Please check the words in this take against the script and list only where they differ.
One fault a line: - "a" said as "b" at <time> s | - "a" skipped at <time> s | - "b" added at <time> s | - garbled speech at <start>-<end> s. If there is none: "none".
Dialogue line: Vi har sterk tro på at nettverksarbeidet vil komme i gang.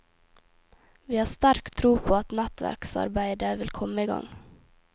none